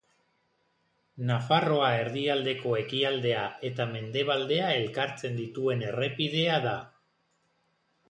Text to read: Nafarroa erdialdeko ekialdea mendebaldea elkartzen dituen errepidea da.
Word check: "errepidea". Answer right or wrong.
right